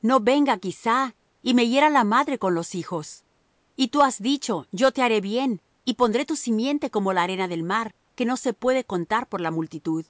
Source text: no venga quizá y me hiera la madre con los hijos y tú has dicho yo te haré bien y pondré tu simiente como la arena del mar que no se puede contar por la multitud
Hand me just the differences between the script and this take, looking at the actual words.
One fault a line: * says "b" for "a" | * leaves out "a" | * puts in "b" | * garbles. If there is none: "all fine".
all fine